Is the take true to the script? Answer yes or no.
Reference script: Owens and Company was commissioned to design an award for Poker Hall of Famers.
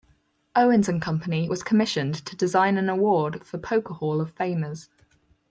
yes